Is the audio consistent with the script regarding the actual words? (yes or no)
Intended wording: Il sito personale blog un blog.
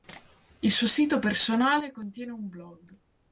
no